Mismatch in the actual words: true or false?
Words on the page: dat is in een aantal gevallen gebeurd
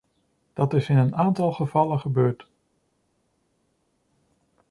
false